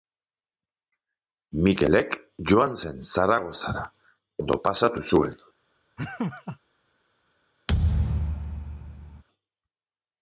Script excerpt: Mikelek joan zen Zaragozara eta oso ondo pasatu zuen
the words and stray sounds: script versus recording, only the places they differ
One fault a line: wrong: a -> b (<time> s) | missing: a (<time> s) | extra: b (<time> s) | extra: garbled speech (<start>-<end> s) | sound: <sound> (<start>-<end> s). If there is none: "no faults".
missing: eta oso (3.9 s)
sound: laugh (6.0-6.6 s)
sound: thud (7.7-9.2 s)